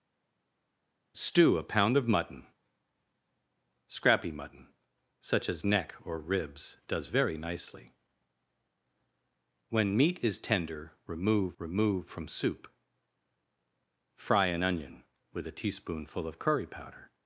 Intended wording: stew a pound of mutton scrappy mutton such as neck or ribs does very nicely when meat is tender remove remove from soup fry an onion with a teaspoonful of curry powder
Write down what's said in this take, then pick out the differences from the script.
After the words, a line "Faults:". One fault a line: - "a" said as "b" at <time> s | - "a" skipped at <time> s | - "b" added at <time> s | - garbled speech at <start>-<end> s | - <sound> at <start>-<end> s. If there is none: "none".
stew a pound of mutton scrappy mutton such as neck or ribs does very nicely when meat is tender remove remove from soup fry an onion with a teaspoonful of curry powder
Faults:
none